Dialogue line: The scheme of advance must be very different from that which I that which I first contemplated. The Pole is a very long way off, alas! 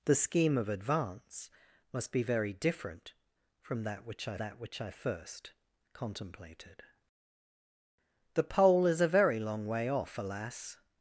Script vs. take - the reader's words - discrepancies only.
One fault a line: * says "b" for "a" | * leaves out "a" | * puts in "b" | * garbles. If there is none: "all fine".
all fine